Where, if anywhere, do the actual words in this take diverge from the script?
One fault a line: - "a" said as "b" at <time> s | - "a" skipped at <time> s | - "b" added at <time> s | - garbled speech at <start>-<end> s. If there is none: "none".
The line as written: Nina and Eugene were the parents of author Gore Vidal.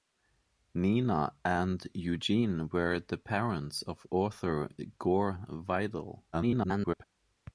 - garbled speech at 6.3-7.0 s